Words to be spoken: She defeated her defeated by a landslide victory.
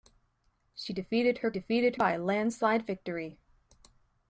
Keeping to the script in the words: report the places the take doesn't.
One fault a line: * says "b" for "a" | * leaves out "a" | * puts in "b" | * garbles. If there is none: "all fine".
all fine